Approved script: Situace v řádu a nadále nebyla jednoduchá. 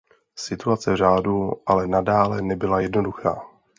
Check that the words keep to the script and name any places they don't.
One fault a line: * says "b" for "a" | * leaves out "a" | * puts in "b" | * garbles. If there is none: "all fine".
* says "ale" for "a"